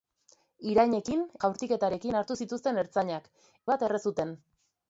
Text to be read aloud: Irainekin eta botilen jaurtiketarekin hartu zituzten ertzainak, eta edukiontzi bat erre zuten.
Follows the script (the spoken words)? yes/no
no